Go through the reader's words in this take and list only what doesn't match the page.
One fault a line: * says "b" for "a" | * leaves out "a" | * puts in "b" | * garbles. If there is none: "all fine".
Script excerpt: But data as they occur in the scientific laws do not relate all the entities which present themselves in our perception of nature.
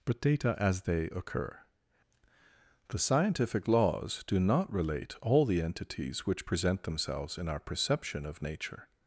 * leaves out "in"